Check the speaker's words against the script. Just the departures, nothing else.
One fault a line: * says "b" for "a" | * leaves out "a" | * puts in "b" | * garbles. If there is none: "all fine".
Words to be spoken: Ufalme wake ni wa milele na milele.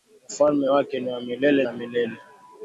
all fine